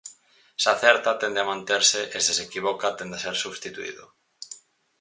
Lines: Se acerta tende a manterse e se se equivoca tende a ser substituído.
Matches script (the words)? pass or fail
pass